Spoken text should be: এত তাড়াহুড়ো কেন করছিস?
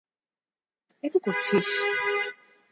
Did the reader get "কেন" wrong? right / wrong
wrong